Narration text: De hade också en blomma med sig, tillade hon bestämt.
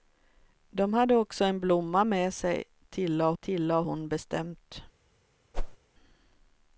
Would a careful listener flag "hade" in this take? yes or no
no